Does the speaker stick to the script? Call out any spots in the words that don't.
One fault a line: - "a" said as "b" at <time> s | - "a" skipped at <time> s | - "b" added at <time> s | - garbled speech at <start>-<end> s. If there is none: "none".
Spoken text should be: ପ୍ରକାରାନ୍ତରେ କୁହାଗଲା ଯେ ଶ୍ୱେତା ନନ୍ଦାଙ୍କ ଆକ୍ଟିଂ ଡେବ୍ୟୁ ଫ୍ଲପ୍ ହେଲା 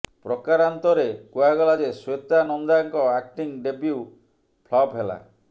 none